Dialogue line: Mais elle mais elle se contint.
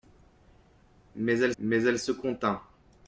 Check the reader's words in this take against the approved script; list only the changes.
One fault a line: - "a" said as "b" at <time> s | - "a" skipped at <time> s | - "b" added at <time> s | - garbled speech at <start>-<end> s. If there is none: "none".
none